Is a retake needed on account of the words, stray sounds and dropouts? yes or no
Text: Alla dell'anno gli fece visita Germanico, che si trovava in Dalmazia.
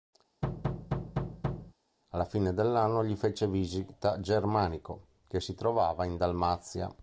yes